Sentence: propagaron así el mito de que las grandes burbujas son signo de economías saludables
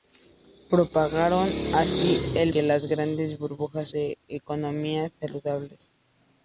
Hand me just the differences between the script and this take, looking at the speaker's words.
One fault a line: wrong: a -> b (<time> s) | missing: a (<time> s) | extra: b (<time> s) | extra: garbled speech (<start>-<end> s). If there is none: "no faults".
missing: mito de (2.5 s)
missing: son signo (3.9 s)